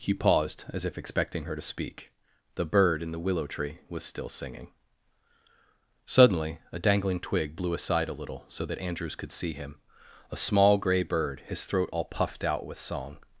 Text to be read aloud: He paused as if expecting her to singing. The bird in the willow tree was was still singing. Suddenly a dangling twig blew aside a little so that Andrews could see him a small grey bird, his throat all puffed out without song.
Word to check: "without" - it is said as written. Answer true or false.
false